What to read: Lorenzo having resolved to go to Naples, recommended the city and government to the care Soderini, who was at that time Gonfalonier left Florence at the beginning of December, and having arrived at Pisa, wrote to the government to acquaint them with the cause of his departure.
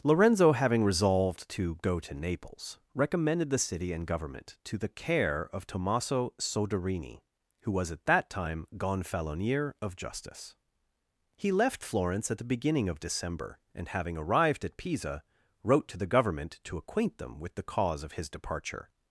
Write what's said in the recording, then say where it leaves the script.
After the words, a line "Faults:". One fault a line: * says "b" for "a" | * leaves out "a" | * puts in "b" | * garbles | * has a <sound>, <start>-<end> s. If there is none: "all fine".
Lorenzo having resolved to go to Naples, recommended the city and government to the care of Tommaso Soderini, who was at that time Gonfalonier of Justice. He left Florence at the beginning of December, and having arrived at Pisa, wrote to the government to acquaint them with the cause of his departure.
Faults:
* puts in "of Tommaso"
* puts in "of Justice He"